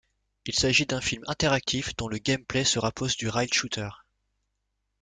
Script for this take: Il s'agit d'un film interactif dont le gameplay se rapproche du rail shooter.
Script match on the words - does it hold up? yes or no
yes